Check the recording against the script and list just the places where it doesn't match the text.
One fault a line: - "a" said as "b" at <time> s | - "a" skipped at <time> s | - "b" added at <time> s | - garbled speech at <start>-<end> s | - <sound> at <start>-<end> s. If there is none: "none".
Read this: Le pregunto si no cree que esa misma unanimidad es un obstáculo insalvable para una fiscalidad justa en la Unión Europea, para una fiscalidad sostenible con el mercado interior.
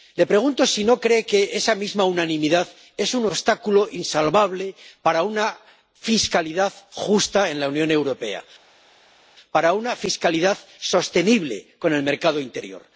none